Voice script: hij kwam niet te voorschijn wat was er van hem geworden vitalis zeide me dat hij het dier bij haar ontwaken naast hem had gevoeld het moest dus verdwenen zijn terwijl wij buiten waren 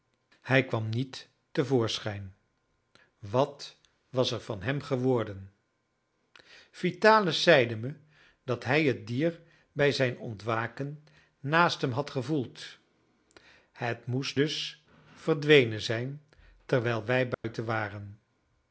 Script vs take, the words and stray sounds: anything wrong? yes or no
yes